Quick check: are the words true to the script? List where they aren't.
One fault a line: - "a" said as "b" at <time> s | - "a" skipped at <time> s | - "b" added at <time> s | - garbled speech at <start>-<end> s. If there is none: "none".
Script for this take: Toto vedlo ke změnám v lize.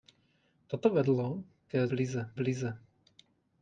- "změnám" said as "lize" at 1.9 s